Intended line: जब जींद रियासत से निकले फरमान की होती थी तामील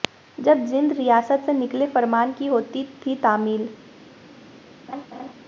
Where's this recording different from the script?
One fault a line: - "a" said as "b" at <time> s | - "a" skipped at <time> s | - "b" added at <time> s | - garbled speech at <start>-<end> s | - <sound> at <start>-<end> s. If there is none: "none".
- laugh at 4.9-5.3 s